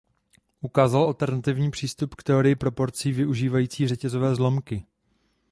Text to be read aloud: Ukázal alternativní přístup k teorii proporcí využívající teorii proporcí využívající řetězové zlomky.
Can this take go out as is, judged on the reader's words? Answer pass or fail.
fail